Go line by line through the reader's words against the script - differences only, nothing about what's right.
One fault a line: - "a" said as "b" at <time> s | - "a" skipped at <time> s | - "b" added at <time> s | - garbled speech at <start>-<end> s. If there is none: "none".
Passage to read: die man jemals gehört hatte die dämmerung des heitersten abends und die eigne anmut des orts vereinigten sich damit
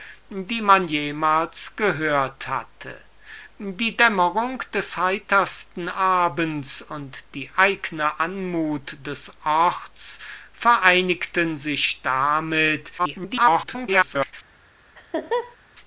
- garbled speech at 13.0-14.3 s